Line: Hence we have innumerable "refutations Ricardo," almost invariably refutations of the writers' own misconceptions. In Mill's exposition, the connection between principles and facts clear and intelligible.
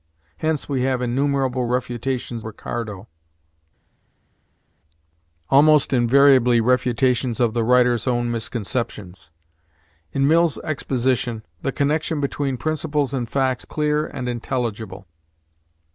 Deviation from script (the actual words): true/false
false